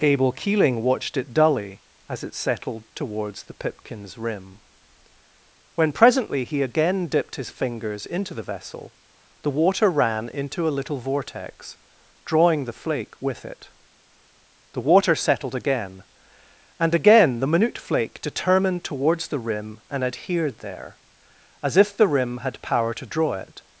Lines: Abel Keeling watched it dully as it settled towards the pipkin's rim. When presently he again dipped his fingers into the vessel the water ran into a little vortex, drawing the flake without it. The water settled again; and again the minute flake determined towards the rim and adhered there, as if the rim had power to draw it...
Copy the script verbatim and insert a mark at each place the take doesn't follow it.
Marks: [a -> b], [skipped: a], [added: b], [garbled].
Abel Keeling watched it dully as it settled towards the pipkin's rim. When presently he again dipped his fingers into the vessel the water ran into a little vortex, drawing the flake [without -> with] it. The water settled again; and again the minute flake determined towards the rim and adhered there, as if the rim had power to draw it...